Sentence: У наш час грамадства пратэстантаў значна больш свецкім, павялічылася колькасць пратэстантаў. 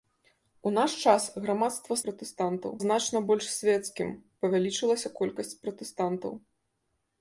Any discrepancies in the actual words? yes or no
no